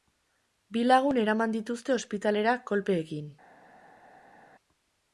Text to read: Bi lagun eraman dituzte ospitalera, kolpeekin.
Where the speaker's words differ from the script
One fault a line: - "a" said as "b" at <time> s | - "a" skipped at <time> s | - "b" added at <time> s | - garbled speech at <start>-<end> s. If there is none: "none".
none